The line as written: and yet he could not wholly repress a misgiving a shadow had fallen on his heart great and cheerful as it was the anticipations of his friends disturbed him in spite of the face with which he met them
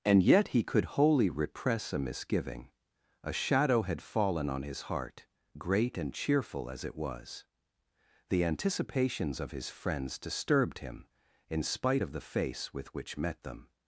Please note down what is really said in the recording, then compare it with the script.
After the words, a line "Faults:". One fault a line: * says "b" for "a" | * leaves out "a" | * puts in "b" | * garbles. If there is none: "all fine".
and yet he could wholly repress a misgiving a shadow had fallen on his heart great and cheerful as it was the anticipations of his friends disturbed him in spite of the face with which met them
Faults:
* leaves out "not"
* leaves out "he"